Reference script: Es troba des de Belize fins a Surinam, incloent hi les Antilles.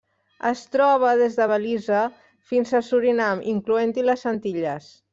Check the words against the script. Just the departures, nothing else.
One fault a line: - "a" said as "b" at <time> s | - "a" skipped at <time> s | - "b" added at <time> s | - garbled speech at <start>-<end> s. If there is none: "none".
none